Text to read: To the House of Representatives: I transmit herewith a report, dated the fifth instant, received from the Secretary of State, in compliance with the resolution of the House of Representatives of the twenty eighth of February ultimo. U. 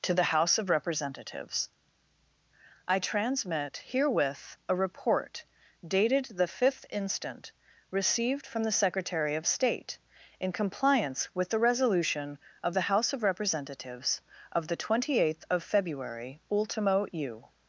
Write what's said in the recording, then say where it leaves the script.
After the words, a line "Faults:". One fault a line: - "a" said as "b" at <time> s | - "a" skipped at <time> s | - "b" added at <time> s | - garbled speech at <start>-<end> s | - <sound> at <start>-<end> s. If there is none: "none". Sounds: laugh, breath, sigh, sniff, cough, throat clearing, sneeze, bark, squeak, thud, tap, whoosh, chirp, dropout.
To the House of Representatives: I transmit herewith a report, dated the fifth instant, received from the Secretary of State, in compliance with the resolution of the House of Representatives of the twenty eighth of February ultimo. U.
Faults:
none